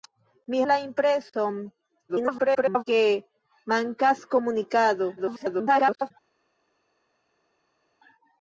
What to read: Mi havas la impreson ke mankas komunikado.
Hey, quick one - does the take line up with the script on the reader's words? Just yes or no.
no